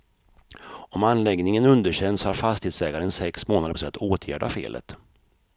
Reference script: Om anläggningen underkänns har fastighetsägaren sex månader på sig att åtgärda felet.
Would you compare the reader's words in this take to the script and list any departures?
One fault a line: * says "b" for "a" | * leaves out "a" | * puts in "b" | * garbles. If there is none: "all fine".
* leaves out "på"